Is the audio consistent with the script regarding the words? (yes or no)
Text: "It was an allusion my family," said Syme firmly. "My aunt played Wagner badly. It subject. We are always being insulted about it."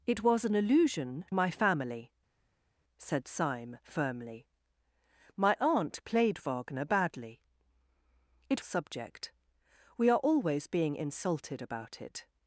yes